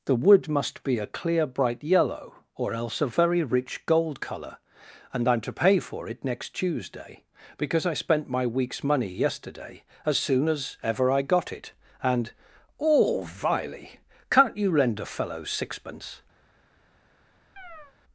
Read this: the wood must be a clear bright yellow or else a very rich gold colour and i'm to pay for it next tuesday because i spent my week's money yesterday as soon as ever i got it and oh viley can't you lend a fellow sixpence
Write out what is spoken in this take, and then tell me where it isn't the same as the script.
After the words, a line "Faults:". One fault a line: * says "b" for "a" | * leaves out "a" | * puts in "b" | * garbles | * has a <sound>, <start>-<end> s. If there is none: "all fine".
the wood must be a clear bright yellow or else a very rich gold colour and i'm to pay for it next tuesday because i spent my week's money yesterday as soon as ever i got it and oh viley can't you lend a fellow sixpence
Faults:
* has a chirp, 17.6-17.9 s